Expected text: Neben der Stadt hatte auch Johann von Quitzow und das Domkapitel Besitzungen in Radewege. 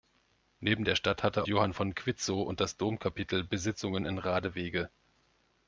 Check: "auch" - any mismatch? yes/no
yes